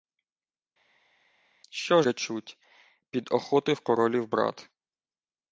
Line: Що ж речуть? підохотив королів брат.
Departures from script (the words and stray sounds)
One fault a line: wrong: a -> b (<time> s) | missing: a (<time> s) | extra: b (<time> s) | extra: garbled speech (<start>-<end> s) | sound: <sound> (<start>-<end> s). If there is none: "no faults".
missing: ж (2.0 s)